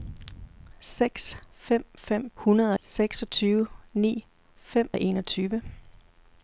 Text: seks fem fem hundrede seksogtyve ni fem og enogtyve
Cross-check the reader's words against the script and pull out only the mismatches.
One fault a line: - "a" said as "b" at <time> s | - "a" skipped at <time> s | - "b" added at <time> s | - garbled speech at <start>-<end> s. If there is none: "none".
none